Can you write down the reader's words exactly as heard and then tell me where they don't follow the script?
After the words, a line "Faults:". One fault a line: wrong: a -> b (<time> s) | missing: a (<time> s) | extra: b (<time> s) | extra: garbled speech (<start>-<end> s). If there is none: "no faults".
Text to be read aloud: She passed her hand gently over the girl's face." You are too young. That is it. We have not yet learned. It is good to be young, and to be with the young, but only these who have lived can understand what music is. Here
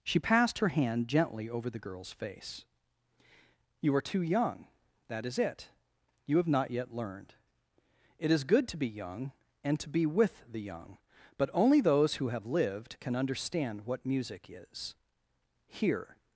She passed her hand gently over the girl's face." You are too young. That is it. You have not yet learned. It is good to be young, and to be with the young, but only those who have lived can understand what music is. Here
Faults:
wrong: We -> You (6.2 s)
wrong: these -> those (11.8 s)